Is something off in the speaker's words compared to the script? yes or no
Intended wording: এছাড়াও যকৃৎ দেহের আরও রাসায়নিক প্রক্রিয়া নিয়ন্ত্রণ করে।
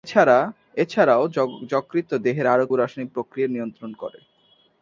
no